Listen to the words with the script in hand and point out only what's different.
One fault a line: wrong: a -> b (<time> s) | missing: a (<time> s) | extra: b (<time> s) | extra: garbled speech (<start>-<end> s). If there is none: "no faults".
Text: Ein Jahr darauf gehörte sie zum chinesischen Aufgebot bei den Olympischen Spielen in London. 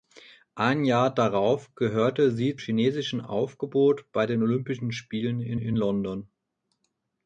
missing: zum (2.6 s)
extra: in (5.5 s)